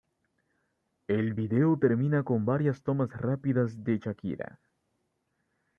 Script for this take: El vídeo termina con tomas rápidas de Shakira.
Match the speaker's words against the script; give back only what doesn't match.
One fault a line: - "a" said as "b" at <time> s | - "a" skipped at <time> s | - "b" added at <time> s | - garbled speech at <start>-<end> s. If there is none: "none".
- "varias" added at 2.5 s